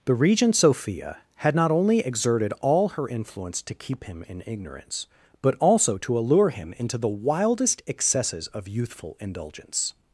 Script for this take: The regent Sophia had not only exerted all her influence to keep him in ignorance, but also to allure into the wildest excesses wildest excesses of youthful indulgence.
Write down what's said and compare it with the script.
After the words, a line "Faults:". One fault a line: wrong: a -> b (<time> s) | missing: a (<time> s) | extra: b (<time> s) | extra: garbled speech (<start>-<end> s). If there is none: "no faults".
The regent Sophia had not only exerted all her influence to keep him in ignorance, but also to allure him into the wildest excesses of youthful indulgence.
Faults:
extra: him (6.5 s)
missing: wildest excesses (8.5 s)